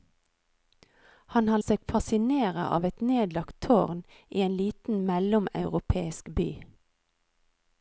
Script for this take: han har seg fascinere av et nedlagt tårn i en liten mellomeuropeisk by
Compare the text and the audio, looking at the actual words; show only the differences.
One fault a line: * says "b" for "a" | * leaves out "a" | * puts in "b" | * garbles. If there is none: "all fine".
all fine